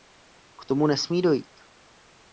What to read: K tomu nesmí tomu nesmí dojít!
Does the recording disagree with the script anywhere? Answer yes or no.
yes